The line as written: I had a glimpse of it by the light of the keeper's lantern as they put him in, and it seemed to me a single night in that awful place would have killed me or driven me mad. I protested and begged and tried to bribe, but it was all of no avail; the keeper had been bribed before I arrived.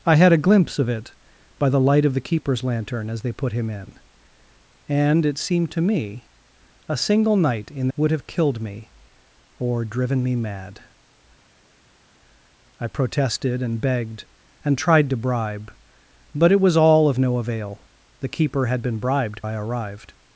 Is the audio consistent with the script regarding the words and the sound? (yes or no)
no